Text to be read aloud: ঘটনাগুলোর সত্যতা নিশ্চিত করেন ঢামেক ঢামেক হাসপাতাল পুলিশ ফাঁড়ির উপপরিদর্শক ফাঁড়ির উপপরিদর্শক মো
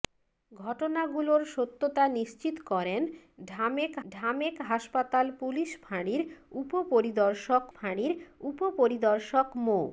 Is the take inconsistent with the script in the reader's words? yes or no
no